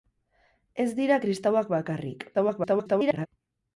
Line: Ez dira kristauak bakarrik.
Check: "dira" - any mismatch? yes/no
no